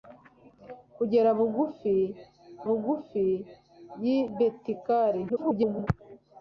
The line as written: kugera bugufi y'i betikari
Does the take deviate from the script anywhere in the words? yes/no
yes